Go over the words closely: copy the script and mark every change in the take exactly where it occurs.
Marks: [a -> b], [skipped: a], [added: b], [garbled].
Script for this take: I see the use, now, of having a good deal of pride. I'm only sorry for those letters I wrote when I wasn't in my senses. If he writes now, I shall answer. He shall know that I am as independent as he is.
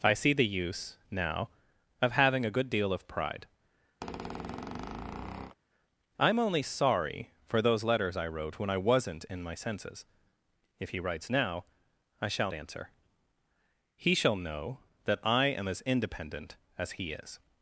I see the use, now, of having a good deal of pride. I'm only sorry for those letters I wrote when I wasn't in my senses. If he writes now, I shall answer. He shall know that I am as independent as he is.